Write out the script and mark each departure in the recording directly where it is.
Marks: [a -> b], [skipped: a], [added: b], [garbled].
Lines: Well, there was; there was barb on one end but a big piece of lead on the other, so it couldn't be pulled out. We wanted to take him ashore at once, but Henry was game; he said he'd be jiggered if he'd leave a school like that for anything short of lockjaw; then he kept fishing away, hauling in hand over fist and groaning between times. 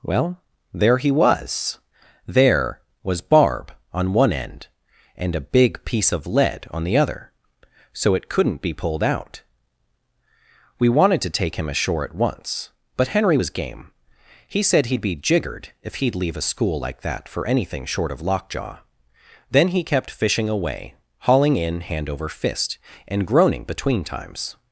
Well, there [added: he] was; there was barb on one end [but -> and] a big piece of lead on the other, so it couldn't be pulled out. We wanted to take him ashore at once, but Henry was game; he said he'd be jiggered if he'd leave a school like that for anything short of lockjaw; then he kept fishing away, hauling in hand over fist and groaning between times.